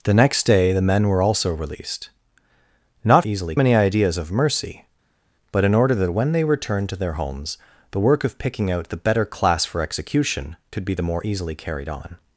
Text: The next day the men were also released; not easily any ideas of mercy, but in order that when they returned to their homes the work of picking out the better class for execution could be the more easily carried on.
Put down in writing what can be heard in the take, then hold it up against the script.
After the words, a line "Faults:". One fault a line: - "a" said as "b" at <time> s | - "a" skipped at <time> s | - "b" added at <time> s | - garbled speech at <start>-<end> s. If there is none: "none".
The next day the men were also released; not easily any ideas of mercy, but in order that when they returned to their homes the work of picking out the better class for execution could be the more easily carried on.
Faults:
none